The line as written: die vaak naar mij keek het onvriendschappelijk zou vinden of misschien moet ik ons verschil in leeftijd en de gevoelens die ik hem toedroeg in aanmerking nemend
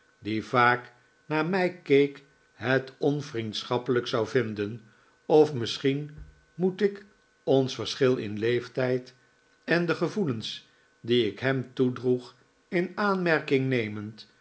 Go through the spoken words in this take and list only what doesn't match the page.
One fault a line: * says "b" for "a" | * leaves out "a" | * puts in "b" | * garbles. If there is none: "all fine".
all fine